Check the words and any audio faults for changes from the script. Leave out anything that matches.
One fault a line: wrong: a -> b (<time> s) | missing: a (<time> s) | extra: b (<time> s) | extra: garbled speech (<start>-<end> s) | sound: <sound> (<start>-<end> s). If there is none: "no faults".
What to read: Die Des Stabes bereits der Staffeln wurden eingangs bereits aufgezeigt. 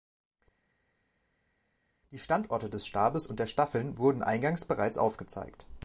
extra: Standorte (2.2 s)
wrong: bereits -> und (3.3 s)